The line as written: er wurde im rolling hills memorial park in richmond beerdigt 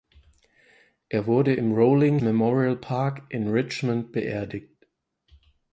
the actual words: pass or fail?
fail